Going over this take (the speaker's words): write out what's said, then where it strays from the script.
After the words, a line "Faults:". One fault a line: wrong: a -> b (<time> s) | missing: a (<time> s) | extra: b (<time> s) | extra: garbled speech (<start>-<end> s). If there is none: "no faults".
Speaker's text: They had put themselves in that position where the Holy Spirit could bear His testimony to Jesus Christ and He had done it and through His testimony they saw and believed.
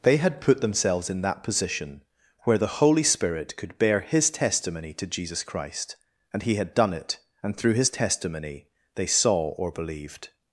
They had put themselves in that position where the Holy Spirit could bear His testimony to Jesus Christ and He had done it and through His testimony they saw or believed.
Faults:
wrong: and -> or (9.5 s)